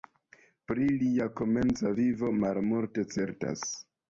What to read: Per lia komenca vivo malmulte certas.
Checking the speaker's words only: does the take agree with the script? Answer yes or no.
no